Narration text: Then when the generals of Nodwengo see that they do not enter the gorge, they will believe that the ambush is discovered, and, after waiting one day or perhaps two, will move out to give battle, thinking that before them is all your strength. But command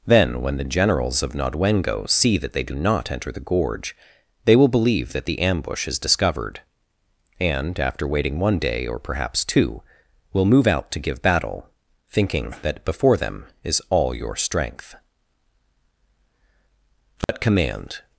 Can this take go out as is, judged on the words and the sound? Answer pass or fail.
fail